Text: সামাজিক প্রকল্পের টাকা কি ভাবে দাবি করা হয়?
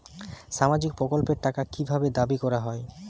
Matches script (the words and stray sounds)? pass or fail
pass